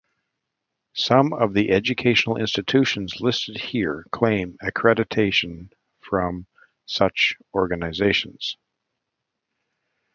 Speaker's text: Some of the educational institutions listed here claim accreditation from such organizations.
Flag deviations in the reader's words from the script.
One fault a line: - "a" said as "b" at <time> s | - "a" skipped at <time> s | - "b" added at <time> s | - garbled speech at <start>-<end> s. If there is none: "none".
none